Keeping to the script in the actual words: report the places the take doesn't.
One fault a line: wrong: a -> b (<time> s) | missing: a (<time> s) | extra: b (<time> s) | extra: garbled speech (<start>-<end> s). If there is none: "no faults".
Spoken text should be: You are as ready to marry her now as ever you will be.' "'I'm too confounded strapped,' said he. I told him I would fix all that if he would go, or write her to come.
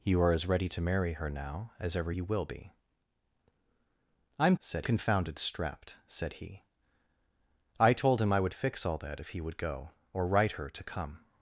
wrong: too -> said (4.6 s)